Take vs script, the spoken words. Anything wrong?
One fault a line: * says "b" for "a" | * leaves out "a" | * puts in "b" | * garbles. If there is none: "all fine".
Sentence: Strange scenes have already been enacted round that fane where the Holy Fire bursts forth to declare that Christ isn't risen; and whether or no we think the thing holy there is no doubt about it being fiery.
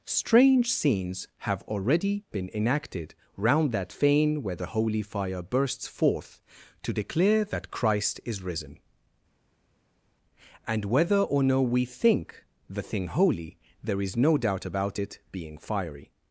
* says "is" for "isn't"